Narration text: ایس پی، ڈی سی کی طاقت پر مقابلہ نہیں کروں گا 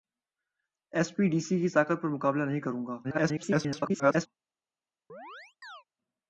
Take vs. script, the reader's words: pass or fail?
fail